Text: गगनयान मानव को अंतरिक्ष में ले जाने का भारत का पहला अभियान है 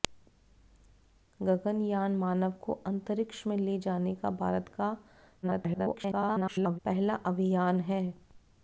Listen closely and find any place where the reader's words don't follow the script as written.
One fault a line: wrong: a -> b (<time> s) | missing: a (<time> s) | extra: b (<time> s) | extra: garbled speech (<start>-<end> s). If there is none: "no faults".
extra: garbled speech (5.4-6.8 s)